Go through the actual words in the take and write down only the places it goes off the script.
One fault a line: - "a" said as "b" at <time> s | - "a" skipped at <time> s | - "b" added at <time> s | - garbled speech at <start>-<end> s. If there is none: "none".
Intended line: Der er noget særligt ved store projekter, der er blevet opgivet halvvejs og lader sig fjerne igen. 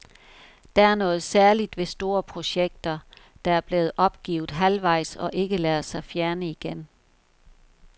- "ikke" added at 5.3 s